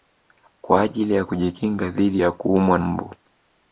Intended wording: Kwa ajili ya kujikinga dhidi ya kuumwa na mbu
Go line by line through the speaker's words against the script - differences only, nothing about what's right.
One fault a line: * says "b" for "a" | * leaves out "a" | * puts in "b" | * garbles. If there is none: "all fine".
* leaves out "na"